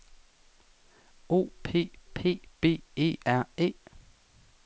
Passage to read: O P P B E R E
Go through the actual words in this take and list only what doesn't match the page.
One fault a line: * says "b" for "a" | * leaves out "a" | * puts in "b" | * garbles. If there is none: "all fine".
all fine